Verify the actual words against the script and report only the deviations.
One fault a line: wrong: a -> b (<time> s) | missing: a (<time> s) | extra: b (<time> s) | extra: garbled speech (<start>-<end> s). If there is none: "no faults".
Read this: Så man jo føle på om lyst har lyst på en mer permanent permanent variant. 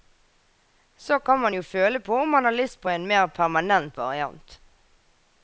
extra: kan (1.2 s)
wrong: lyst -> man (2.3 s)
missing: permanent (4.0 s)